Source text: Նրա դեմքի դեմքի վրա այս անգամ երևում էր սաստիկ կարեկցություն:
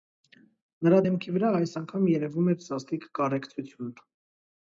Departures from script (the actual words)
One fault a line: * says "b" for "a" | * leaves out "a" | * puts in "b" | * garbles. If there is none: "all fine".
* leaves out "դեմքի"